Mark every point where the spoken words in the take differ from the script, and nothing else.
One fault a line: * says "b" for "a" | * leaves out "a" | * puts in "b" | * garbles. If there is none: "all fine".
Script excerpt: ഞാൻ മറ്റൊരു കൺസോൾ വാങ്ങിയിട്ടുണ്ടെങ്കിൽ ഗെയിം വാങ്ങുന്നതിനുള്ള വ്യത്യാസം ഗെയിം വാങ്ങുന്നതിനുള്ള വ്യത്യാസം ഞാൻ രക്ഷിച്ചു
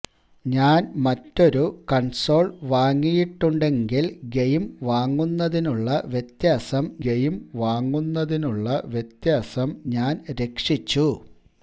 all fine